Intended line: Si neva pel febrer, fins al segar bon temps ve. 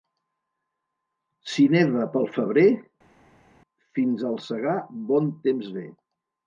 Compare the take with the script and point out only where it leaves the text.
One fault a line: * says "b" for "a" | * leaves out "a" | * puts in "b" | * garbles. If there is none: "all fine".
all fine